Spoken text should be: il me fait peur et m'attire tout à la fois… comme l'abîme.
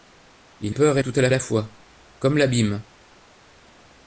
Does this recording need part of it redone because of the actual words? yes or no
yes